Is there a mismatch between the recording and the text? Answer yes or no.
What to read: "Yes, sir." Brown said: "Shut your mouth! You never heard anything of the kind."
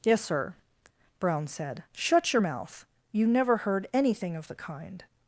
no